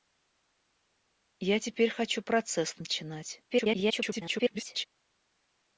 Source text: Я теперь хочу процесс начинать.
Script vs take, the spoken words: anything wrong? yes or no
yes